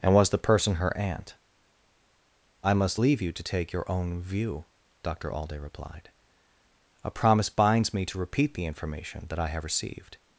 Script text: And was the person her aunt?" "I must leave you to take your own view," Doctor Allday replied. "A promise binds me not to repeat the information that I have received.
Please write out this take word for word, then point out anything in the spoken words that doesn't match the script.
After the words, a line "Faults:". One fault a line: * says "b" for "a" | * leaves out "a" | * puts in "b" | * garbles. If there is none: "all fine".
And was the person her aunt?" "I must leave you to take your own view," Doctor Allday replied. "A promise binds me to repeat the information that I have received.
Faults:
* leaves out "not"